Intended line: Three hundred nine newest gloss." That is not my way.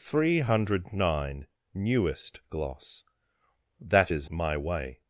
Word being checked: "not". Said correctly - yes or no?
no